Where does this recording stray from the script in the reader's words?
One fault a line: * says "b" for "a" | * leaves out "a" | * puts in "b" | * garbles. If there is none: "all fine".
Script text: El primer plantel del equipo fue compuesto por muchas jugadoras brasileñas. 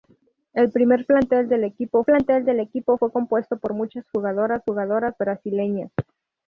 * puts in "plantel del equipo"
* puts in "jugadoras"